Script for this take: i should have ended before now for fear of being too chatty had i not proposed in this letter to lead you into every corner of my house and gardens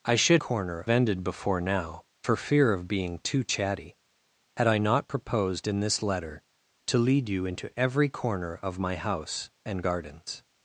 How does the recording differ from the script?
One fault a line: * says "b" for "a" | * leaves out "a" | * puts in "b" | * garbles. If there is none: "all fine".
* says "corner" for "have"